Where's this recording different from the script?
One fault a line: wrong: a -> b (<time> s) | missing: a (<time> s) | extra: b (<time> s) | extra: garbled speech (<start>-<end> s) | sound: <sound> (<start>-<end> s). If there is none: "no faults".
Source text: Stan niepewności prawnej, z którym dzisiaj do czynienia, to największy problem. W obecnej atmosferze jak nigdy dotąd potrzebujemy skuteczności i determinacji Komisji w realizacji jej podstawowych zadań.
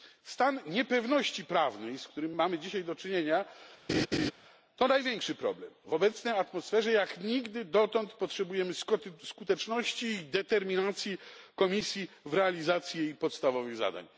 extra: mamy (2.3 s)
sound: laugh (3.9-4.3 s)